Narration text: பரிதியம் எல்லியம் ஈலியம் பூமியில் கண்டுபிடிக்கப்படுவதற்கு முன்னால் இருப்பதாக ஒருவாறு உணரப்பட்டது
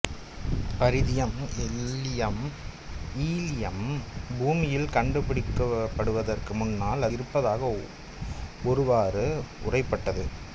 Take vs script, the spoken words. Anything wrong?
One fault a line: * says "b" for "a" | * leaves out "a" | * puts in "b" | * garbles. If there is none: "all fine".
all fine